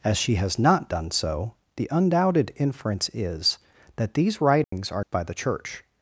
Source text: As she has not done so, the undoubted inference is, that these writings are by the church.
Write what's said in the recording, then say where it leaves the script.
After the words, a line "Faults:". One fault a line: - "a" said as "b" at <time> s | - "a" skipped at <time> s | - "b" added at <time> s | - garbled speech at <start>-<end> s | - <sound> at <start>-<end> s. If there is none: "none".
As she has not done so, the undoubted inference is, that these writings are by the church.
Faults:
- dropout at 4.6-4.7 s